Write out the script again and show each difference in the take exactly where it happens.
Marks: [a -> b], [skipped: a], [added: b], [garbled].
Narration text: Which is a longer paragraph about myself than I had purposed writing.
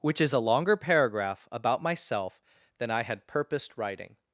Which is a longer paragraph about myself than I had purposed writing.